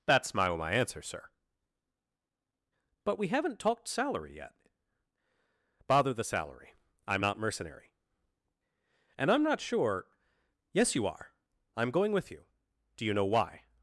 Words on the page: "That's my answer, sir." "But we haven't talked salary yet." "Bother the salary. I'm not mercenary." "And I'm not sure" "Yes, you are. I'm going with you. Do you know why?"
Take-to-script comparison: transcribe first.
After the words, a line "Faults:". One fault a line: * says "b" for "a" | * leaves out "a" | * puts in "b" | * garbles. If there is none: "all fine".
"That's my my answer, sir." "But we haven't talked salary yet." "Bother the salary. I'm not mercenary." "And I'm not sure" "Yes, you are. I'm going with you. Do you know why?"
Faults:
* puts in "my"